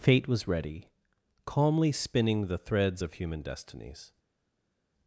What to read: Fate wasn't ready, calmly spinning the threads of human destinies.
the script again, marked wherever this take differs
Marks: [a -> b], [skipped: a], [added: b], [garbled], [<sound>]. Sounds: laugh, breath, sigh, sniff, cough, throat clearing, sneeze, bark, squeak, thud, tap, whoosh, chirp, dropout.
Fate [wasn't -> was] ready, calmly spinning the threads of human destinies.